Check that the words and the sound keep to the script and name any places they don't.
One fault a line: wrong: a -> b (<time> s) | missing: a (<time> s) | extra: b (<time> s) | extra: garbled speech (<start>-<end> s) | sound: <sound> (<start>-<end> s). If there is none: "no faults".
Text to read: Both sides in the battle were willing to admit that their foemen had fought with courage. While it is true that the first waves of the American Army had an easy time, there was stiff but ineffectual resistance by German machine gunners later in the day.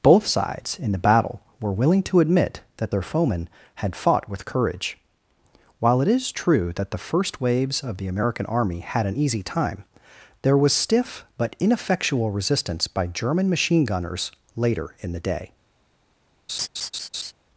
sound: laugh (16.5-17.3 s)